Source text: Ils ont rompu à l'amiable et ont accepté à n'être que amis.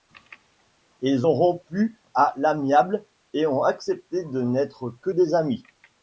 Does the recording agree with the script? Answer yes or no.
no